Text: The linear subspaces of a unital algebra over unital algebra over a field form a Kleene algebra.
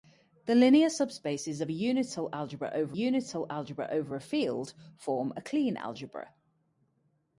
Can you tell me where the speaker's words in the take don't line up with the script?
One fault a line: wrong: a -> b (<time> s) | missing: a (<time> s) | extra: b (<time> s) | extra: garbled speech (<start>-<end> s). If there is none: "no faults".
no faults